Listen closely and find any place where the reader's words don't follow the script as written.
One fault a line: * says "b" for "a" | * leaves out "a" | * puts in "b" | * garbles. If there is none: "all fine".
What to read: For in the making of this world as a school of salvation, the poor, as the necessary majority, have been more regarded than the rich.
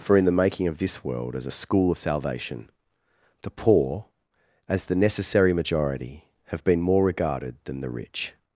all fine